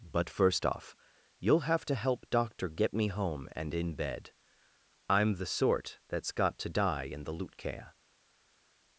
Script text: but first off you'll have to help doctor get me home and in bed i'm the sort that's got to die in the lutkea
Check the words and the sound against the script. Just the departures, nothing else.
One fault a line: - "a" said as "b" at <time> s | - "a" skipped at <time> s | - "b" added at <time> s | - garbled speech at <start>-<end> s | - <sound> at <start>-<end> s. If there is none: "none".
none